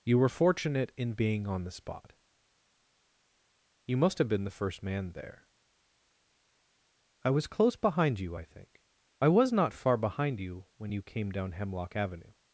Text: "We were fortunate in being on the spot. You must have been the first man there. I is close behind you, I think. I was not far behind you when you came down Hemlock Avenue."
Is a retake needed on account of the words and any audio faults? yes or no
yes